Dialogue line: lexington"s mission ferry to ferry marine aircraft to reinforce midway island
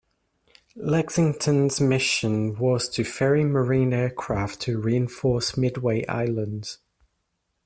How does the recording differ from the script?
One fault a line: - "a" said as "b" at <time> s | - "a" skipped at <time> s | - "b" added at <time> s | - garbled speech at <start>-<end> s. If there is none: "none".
- "ferry" said as "was" at 2.6 s